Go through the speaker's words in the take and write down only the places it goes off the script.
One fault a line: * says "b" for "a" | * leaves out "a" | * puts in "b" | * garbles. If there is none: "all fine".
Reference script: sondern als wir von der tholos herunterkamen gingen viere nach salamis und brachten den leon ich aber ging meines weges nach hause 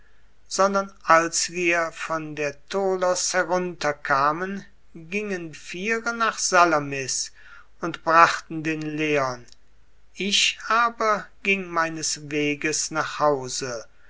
all fine